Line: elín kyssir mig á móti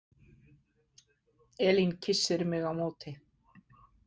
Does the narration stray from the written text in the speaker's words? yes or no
no